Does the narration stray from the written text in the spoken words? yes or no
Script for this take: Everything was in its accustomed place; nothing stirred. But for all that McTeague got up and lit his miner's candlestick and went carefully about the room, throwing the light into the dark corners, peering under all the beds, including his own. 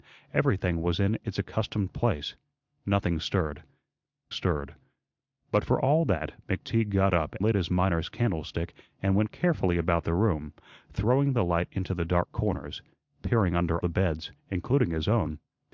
yes